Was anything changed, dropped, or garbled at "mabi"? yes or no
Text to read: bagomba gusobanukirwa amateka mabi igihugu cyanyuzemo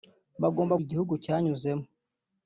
yes